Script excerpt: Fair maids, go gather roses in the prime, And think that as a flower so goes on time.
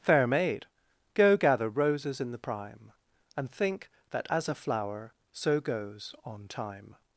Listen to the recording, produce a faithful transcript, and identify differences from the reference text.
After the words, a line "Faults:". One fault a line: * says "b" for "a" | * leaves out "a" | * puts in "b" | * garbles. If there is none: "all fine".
Fair maid, go gather roses in the prime, And think that as a flower so goes on time.
Faults:
* says "maid" for "maids"